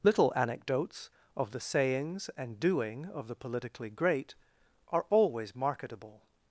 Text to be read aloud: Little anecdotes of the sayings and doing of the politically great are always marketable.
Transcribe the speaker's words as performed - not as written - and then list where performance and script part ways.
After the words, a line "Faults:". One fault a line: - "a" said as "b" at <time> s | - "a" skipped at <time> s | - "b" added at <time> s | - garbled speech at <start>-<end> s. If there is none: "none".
Little anecdotes of the sayings and doing of the politically great are always marketable.
Faults:
none